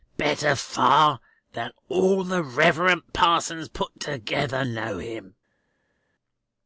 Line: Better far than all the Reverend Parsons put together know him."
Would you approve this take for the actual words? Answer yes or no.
yes